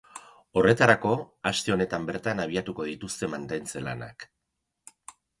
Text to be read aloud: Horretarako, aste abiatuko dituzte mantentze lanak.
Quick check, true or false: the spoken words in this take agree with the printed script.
false